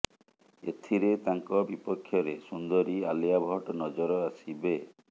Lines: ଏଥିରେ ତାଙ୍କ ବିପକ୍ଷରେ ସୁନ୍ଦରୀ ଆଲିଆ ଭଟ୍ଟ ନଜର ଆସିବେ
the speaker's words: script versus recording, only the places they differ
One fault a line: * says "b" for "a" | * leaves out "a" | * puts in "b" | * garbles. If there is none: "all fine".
all fine